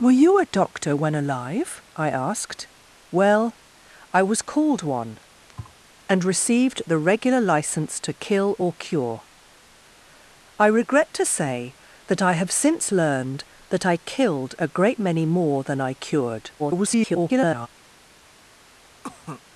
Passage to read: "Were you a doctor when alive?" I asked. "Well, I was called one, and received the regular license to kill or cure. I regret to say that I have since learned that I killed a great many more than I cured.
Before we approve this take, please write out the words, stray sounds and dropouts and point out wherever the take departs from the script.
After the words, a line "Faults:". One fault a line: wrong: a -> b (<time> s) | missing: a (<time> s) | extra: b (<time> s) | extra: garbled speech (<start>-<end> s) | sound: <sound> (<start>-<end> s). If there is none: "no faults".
"Were you a doctor when alive?" I asked. "Well, I was called one, and received the regular license to kill or cure. I regret to say that I have since learned that I killed a great many more than I cured. [garbled]
Faults:
sound: thud (5.5-5.8 s)
extra: garbled speech (16.6-17.7 s)
sound: cough (19.0-19.4 s)